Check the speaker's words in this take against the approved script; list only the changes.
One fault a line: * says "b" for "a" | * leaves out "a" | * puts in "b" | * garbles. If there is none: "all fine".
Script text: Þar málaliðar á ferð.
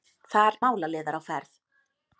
all fine